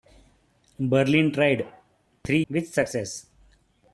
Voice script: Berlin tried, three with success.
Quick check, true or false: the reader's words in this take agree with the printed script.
true